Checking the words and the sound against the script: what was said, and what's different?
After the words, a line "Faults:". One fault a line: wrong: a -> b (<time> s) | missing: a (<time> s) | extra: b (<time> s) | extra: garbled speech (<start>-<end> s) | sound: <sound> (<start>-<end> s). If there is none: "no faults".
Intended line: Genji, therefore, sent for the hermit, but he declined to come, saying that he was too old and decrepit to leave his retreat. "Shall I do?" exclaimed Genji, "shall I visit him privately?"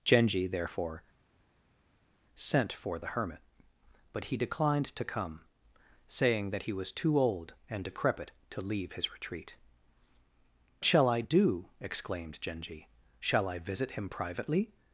Genji, therefore, sent for the hermit, but he declined to come, saying that he was too old and decrepit to leave his retreat. "Shall I do?" exclaimed Genji, "shall I visit him privately?"
Faults:
no faults